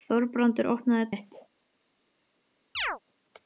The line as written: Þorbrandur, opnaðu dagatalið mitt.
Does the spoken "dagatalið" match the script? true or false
false